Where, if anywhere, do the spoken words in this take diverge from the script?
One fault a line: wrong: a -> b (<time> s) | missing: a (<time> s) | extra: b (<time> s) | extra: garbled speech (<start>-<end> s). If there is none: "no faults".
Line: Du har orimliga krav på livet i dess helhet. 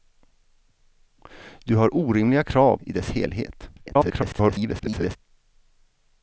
missing: på livet (2.8 s)
extra: garbled speech (3.8-5.2 s)